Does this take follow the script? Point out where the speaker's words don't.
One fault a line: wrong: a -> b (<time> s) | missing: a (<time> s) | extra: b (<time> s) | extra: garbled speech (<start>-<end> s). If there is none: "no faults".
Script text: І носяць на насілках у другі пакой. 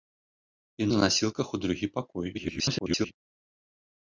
missing: носяць (0.9 s)
extra: garbled speech (2.3-3.1 s)